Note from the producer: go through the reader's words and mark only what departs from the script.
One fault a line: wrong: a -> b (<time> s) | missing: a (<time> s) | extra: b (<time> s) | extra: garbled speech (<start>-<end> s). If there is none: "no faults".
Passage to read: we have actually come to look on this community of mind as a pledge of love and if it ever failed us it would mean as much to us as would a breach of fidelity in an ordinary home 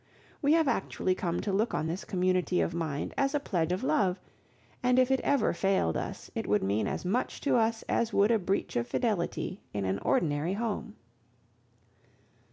no faults